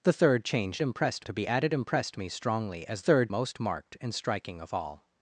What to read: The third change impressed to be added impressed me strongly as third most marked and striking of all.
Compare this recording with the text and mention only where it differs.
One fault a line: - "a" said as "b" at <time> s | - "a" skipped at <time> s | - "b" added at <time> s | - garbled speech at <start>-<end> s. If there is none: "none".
none